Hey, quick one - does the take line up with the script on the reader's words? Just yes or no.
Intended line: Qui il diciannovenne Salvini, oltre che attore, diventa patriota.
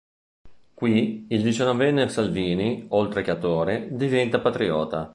yes